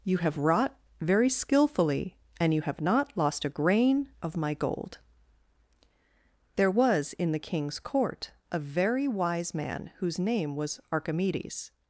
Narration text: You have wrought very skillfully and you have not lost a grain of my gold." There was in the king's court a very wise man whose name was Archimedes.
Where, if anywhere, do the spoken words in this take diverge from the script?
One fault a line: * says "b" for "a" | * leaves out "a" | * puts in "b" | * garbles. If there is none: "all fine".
all fine